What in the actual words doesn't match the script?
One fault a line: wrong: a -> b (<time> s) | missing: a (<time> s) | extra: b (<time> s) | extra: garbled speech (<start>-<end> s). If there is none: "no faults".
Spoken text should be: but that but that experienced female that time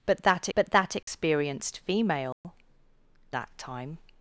no faults